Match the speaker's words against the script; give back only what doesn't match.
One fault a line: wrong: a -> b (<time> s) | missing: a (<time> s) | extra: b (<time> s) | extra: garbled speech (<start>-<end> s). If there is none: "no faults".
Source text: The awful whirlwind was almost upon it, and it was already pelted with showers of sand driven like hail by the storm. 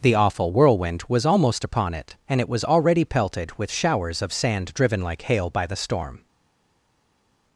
no faults